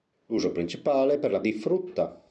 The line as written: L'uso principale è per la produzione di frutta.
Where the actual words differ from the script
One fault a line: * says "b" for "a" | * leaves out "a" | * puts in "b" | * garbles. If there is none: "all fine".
* leaves out "produzione"